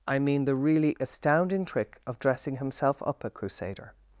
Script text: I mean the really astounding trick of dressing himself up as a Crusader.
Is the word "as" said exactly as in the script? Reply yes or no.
no